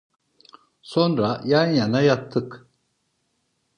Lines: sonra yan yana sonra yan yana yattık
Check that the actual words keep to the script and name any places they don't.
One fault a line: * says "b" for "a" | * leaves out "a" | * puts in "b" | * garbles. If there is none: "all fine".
* leaves out "sonra yan yana"